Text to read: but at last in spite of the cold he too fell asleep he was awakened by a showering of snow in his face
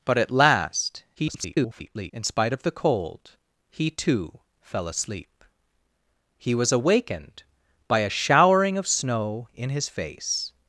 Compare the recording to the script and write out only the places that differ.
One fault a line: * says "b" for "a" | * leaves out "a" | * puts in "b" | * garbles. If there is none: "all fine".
* garbles